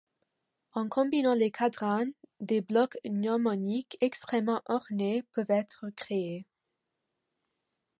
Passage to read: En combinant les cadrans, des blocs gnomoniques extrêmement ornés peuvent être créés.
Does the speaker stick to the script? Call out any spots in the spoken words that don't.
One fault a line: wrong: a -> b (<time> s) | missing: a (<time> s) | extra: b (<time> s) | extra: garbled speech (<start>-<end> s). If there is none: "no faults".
no faults